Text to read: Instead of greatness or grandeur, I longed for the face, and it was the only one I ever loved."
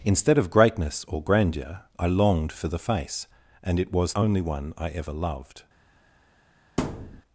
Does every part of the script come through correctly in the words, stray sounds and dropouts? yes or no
no